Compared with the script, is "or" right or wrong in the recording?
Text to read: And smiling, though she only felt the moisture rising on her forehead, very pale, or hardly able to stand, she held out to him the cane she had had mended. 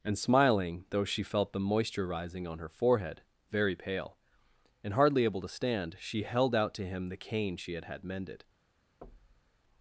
wrong